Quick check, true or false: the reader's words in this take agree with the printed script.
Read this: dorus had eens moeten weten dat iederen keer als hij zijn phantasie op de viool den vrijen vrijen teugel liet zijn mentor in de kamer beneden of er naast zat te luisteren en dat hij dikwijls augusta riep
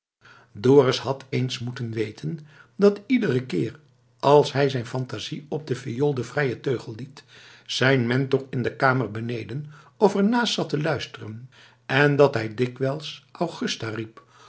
false